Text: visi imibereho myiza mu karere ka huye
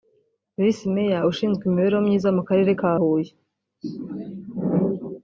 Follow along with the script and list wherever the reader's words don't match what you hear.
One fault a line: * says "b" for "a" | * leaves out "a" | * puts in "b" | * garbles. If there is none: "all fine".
* puts in "meya ushinzwe"